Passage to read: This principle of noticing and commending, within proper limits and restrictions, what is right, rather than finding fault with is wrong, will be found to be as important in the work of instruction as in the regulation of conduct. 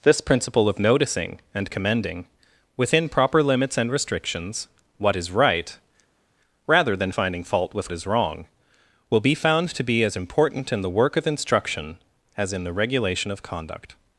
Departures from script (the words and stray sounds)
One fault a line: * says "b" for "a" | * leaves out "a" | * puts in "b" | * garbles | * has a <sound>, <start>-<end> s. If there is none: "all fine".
all fine